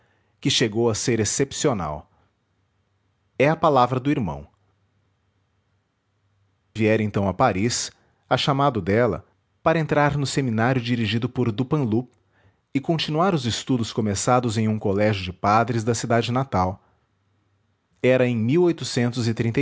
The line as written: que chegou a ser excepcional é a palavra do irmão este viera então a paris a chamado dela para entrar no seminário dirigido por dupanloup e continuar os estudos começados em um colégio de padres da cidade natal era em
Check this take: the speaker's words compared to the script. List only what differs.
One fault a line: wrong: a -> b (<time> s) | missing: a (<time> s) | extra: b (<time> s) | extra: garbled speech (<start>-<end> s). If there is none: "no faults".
missing: este (4.5 s)